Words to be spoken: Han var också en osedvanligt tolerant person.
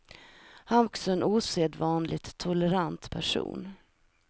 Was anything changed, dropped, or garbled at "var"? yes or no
yes